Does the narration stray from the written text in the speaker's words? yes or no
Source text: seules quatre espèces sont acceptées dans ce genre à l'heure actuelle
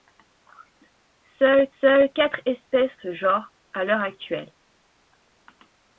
yes